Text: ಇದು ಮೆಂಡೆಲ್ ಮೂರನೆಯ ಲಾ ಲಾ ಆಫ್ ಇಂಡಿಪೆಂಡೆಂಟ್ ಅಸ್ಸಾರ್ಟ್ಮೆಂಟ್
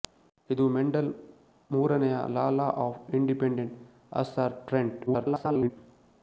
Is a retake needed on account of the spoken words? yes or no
yes